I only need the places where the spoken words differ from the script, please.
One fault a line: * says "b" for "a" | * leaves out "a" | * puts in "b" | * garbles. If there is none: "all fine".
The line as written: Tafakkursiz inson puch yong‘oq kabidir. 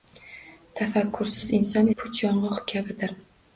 all fine